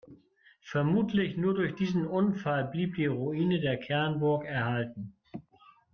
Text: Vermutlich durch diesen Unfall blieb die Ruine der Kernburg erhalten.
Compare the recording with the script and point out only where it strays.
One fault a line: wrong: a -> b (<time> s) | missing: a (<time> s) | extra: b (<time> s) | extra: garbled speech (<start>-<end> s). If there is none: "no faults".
extra: nur (1.4 s)